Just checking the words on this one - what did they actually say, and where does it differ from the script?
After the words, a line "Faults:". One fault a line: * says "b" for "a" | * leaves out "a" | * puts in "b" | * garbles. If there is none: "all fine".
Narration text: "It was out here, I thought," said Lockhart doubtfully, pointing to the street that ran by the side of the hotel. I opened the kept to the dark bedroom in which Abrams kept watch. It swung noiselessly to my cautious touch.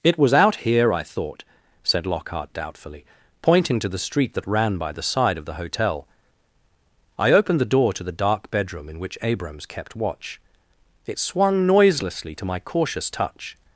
"It was out here, I thought," said Lockhart doubtfully, pointing to the street that ran by the side of the hotel. I opened the door to the dark bedroom in which Abrams kept watch. It swung noiselessly to my cautious touch.
Faults:
* says "door" for "kept"